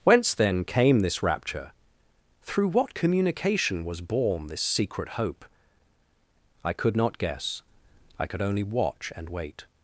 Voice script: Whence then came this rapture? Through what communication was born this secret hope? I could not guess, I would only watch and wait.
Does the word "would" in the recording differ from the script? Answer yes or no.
yes